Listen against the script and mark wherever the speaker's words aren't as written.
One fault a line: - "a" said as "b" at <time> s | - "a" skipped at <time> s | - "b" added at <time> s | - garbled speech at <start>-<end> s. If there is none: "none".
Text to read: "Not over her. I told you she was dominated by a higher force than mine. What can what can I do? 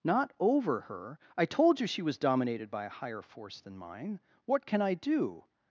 - "what can" skipped at 4.8 s